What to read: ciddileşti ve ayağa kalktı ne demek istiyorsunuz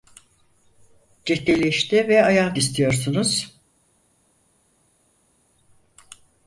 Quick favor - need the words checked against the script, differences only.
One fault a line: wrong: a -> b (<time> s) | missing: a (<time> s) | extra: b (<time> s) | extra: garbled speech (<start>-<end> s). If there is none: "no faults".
missing: kalktı ne demek (2.5 s)